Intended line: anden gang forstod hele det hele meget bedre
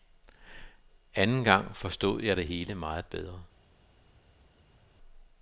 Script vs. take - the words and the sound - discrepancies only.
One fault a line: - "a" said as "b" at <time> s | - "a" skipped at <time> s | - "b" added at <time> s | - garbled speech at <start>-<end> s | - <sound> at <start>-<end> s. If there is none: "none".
- "hele" said as "jeg" at 2.2 s